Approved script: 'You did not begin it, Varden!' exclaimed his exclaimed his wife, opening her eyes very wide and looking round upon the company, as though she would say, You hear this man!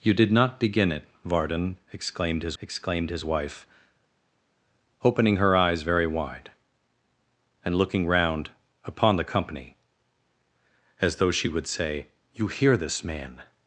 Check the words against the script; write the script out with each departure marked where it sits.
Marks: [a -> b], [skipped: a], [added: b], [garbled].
'You did not begin it, Varden!' exclaimed his exclaimed his wife, opening her eyes very wide and looking round upon the company, as though she would say, You hear this man!